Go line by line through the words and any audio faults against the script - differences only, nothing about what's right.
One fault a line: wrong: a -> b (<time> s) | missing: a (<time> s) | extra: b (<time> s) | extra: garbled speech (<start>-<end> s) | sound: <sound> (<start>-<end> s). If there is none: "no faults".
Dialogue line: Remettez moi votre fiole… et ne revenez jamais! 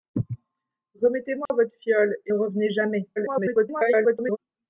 sound: dropout (1.5-1.5 s)
missing: ne (2.3 s)
extra: garbled speech (3.2-4.4 s)